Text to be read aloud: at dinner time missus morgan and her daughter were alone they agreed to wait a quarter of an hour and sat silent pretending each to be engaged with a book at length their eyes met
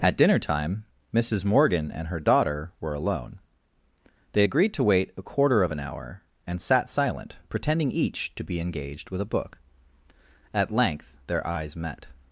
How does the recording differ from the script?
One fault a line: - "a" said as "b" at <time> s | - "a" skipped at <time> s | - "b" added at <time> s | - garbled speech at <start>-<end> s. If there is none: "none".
none